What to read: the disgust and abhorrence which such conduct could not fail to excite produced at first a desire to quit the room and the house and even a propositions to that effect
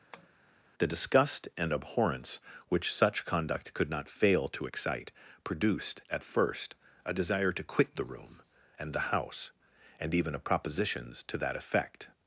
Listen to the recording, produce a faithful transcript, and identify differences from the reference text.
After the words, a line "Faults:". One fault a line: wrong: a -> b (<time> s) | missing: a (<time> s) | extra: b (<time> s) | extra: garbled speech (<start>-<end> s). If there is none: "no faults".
the disgust and abhorrence which such conduct could not fail to excite produced at first a desire to quit the room and the house and even a propositions to that effect
Faults:
no faults